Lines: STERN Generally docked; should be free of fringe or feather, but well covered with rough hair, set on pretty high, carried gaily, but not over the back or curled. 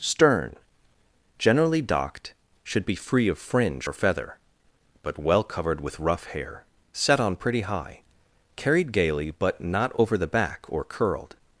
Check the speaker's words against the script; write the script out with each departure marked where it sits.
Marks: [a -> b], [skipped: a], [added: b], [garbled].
STERN Generally docked; should be free of fringe or feather, but well covered with rough hair, set on pretty high, carried gaily, but not over the back or curled.